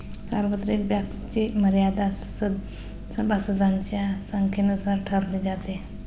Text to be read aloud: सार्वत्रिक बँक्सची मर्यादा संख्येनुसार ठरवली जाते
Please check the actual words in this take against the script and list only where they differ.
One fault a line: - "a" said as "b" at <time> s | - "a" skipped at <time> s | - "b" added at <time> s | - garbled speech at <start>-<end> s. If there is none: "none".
- "सभासदांच्या" added at 3.2 s